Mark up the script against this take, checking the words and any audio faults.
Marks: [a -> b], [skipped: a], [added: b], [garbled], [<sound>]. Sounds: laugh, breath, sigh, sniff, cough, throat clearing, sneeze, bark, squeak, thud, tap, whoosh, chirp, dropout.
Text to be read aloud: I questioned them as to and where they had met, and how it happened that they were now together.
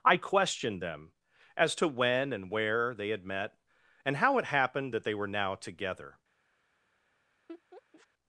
I questioned them as to [added: when] and where they had met, and how it happened that they were now together. [laugh]